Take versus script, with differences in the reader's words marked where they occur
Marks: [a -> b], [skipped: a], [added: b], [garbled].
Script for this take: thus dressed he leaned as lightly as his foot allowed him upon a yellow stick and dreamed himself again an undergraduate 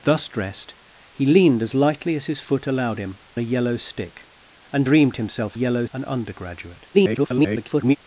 thus dressed he leaned as lightly as his foot allowed him [skipped: upon] a yellow stick and dreamed himself [again -> yellow] an undergraduate [garbled]